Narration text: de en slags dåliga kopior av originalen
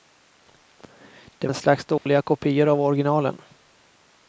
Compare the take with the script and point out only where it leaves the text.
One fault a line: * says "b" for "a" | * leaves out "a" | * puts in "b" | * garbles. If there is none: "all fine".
all fine